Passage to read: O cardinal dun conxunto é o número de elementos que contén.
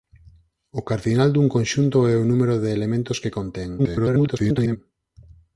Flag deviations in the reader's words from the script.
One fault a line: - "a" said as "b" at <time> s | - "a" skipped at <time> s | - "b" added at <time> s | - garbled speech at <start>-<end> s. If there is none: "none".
- garbled speech at 3.8-4.8 s